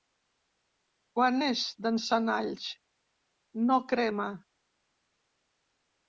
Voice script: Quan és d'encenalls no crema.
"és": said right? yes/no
yes